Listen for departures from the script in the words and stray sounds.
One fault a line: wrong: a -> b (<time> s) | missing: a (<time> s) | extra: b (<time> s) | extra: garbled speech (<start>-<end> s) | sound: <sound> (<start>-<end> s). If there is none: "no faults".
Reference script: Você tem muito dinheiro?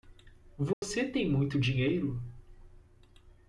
sound: dropout (0.7-0.8 s)